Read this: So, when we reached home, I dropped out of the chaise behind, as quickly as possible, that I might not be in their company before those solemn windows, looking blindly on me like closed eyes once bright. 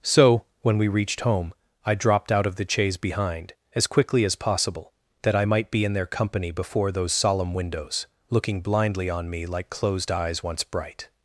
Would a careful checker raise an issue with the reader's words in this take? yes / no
yes